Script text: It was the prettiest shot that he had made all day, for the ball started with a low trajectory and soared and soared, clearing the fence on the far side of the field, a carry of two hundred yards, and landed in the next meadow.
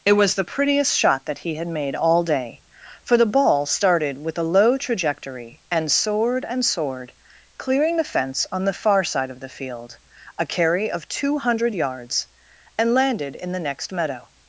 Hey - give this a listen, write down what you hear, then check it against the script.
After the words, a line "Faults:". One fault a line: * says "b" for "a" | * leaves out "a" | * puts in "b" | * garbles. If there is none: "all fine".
It was the prettiest shot that he had made all day, for the ball started with a low trajectory and soared and soared, clearing the fence on the far side of the field, a carry of two hundred yards, and landed in the next meadow.
Faults:
all fine